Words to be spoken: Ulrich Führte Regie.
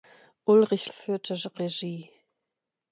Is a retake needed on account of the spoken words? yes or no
no